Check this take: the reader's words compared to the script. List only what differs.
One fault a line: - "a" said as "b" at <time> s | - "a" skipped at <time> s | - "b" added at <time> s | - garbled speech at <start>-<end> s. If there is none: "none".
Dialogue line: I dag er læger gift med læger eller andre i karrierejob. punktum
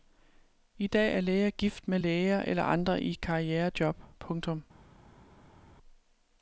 none